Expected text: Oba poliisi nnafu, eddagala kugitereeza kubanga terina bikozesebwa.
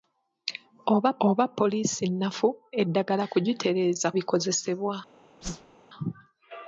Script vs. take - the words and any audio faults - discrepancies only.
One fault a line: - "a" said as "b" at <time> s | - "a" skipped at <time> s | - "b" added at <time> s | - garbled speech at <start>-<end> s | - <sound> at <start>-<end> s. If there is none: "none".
- "oba" added at 1.3 s
- "kubanga terina" skipped at 4.1 s
- whoosh at 5.4-5.7 s